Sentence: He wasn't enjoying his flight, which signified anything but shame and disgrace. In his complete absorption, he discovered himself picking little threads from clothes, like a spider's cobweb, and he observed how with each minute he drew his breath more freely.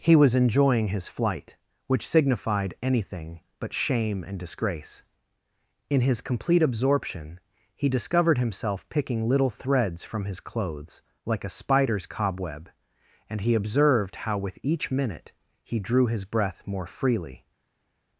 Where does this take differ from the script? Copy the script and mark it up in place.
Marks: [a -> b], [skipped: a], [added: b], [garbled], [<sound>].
He [wasn't -> was] enjoying his flight, which signified anything but shame and disgrace. In his complete absorption, he discovered himself picking little threads from [added: his] clothes, like a spider's cobweb, and he observed how with each minute he drew his breath more freely.